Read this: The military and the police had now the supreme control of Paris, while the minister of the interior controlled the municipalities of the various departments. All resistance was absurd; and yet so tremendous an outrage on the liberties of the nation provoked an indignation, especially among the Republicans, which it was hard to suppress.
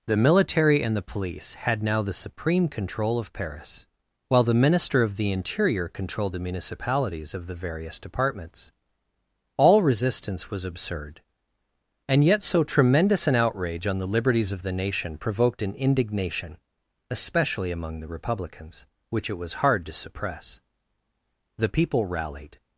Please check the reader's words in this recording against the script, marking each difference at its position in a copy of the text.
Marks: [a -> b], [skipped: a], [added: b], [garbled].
The military and the police had now the supreme control of Paris, while the minister of the interior controlled the municipalities of the various departments. All resistance was absurd; and yet so tremendous an outrage on the liberties of the nation provoked an indignation, especially among the Republicans, which it was hard to suppress. [added: The people rallied]